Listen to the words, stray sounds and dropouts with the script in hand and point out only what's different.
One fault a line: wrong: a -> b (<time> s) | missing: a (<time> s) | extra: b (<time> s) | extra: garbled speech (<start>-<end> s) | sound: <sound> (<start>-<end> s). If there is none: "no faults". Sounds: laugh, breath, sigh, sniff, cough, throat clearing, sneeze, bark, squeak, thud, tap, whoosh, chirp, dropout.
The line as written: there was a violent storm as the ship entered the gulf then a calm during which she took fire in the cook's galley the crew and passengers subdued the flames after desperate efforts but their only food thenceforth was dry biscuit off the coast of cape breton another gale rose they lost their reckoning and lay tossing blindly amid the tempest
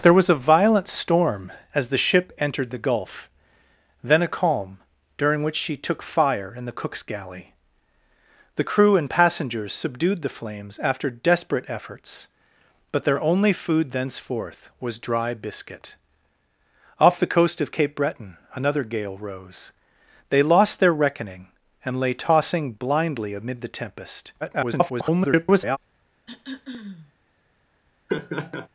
extra: garbled speech (24.4-25.8 s)
sound: throat clearing (26.3-27.1 s)
sound: laugh (28.1-28.7 s)